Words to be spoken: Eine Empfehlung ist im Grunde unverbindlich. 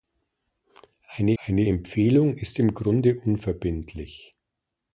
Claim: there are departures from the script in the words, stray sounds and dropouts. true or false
true